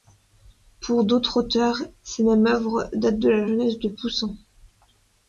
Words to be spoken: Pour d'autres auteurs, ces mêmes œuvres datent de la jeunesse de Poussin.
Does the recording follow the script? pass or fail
pass